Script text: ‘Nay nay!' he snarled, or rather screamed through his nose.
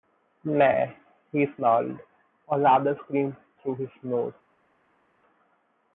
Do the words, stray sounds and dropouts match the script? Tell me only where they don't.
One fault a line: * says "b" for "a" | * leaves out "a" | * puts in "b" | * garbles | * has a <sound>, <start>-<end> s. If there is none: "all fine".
* leaves out "nay"